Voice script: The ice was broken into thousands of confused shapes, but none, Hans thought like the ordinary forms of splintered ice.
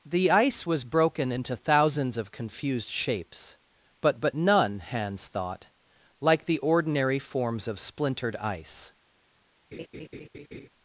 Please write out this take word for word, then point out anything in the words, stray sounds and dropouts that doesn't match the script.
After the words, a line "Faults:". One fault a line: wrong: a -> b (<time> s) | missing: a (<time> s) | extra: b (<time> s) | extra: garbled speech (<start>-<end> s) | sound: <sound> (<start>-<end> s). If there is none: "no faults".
The ice was broken into thousands of confused shapes, but but none, Hans thought like the ordinary forms of splintered ice.
Faults:
extra: but (4.2 s)
sound: laugh (9.7-10.7 s)